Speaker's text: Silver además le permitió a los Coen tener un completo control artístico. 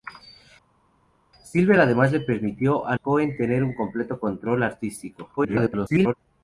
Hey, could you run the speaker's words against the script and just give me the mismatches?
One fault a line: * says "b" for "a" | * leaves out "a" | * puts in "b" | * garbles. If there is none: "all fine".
* leaves out "los"
* garbles